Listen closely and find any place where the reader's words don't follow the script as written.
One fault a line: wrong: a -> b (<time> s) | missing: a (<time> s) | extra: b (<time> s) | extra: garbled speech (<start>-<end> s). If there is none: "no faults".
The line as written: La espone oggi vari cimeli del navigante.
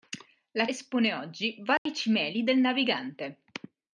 no faults